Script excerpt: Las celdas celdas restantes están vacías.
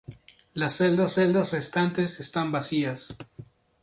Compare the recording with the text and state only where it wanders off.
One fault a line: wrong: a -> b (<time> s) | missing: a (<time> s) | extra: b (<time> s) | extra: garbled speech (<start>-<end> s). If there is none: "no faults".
no faults